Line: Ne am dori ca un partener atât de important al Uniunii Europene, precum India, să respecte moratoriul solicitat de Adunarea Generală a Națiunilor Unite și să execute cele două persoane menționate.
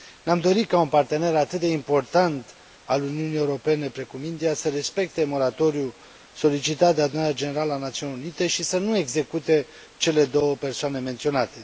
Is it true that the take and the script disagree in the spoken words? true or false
true